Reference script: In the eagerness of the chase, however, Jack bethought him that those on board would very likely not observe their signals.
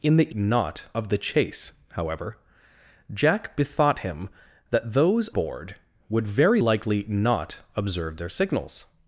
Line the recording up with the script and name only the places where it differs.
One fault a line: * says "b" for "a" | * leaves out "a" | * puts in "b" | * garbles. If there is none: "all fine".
* says "not" for "eagerness"
* leaves out "on"